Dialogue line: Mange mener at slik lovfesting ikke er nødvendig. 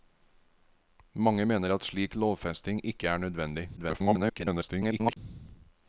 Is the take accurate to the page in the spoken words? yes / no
no